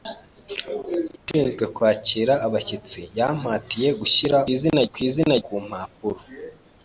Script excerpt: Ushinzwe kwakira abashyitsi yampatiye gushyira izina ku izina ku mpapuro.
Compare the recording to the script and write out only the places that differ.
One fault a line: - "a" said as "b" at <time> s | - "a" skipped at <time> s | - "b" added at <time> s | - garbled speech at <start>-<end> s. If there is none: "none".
none